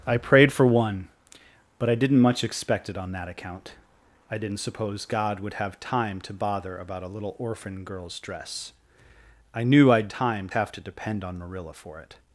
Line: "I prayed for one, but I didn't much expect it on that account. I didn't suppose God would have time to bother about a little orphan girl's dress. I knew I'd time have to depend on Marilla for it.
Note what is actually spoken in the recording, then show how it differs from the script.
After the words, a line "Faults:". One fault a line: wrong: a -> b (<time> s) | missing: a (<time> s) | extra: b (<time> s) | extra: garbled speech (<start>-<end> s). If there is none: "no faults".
"I prayed for one, but I didn't much expect it on that account. I didn't suppose God would have time to bother about a little orphan girl's dress. I knew I'd time have to depend on Marilla for it.
Faults:
no faults